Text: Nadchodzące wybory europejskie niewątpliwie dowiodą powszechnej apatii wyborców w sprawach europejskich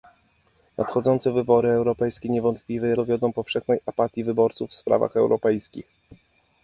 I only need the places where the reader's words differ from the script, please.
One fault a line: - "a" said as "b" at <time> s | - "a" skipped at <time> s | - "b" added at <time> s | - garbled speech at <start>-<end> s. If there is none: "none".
none